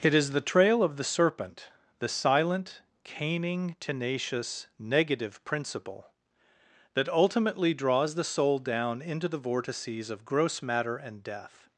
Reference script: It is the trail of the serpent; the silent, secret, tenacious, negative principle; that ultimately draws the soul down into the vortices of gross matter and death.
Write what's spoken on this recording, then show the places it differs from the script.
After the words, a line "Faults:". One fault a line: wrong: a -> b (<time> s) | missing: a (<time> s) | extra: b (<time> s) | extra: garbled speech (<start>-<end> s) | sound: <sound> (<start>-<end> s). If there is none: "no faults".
It is the trail of the serpent; the silent, caning, tenacious, negative principle; that ultimately draws the soul down into the vortices of gross matter and death.
Faults:
wrong: secret -> caning (3.0 s)